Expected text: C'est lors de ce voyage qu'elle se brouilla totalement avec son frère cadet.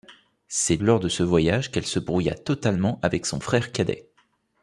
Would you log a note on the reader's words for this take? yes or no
no